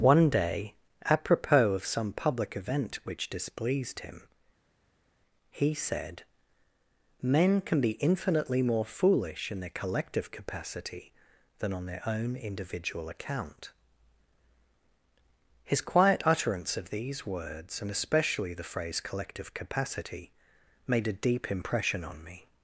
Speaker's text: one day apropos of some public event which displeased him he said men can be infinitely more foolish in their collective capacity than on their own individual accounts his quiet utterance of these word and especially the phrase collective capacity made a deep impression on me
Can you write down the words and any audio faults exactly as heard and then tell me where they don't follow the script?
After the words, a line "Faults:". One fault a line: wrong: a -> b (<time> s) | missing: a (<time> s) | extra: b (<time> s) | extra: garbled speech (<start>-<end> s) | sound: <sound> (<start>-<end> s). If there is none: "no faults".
one day apropos of some public event which displeased him he said men can be infinitely more foolish in their collective capacity than on their own individual account his quiet utterance of these words and especially the phrase collective capacity made a deep impression on me
Faults:
wrong: accounts -> account (13.1 s)
wrong: word -> words (17.3 s)